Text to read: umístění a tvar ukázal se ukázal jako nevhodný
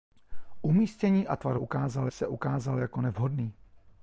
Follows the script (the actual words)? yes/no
yes